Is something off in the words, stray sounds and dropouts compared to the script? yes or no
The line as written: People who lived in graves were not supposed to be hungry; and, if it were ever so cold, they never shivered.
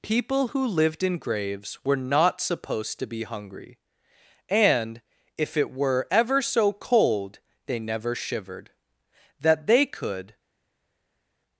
yes